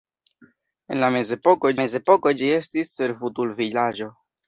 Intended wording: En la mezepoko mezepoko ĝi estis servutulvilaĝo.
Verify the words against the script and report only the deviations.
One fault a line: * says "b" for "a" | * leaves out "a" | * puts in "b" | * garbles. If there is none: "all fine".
all fine